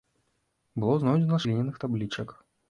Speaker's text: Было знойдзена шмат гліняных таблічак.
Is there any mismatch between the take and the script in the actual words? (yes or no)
yes